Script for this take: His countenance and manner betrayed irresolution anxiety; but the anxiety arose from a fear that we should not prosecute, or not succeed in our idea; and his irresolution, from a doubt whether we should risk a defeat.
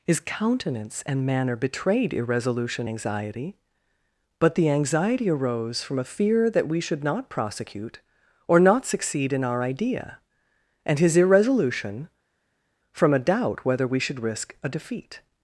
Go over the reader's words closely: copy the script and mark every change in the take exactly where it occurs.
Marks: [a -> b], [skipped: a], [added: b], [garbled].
His countenance and manner betrayed irresolution anxiety; but the anxiety arose from a fear that we should not prosecute, or not succeed in our idea; and his irresolution, from a doubt whether we should risk a defeat.